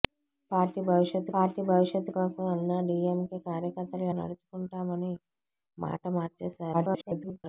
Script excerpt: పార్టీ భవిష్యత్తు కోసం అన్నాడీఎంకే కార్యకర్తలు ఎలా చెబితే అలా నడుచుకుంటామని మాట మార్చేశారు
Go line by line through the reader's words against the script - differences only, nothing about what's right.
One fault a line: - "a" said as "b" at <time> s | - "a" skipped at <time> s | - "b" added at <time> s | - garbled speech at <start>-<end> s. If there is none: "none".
- "పార్టీ భవిష్యత్తు" added at 1.3 s
- "ఎలా చెబితే అలా" skipped at 4.1 s
- garbled speech at 6.7-7.4 s